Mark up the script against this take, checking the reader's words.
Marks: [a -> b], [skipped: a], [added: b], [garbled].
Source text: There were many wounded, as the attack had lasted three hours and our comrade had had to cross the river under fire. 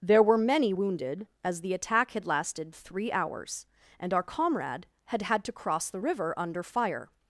There were many wounded, as the attack had lasted three hours and our comrade had had to cross the river under fire.